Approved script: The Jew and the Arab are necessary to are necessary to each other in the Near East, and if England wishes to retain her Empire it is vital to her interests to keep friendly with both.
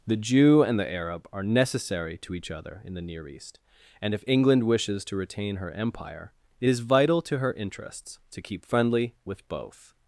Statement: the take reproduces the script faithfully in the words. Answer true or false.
false